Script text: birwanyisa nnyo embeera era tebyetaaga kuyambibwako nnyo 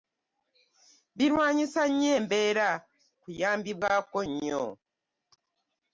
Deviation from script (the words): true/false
true